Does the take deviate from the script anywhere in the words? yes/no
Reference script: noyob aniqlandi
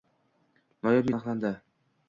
no